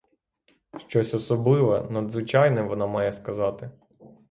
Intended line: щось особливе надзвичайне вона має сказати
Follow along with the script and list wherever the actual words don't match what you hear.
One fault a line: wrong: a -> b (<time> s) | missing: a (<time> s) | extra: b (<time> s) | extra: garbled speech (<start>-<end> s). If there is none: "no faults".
no faults